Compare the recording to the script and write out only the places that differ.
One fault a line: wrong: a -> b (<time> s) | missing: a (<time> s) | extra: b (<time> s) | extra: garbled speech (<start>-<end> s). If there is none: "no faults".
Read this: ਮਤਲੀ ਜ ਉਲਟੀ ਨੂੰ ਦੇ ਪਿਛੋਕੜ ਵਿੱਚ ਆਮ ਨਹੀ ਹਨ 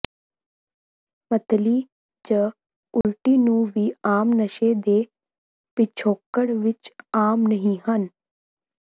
extra: ਵੀ ਆਮ ਨਸ਼ੇ (3.8 s)